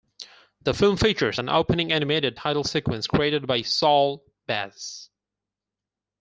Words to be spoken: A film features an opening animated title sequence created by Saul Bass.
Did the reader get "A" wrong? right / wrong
wrong